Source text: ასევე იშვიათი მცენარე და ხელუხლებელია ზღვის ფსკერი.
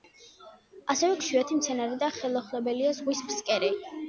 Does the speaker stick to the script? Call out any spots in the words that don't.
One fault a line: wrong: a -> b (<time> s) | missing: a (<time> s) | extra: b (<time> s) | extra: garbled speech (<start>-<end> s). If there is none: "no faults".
no faults